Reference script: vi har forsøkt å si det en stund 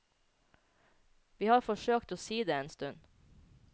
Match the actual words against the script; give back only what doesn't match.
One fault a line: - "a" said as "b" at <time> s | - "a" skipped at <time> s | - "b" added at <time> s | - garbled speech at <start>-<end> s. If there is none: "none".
none